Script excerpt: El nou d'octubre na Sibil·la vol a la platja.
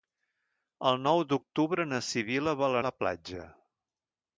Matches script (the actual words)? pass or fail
pass